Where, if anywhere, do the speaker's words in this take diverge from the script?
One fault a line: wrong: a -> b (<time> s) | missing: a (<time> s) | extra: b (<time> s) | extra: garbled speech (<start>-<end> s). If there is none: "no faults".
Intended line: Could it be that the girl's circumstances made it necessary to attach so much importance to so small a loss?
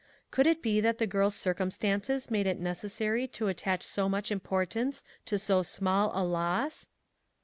no faults